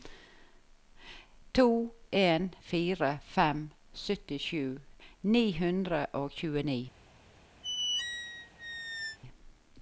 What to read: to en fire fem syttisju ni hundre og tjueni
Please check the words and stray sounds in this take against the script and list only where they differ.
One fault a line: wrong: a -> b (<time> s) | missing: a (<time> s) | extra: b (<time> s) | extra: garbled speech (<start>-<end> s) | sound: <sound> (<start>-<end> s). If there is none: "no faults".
sound: squeak (7.6-9.2 s)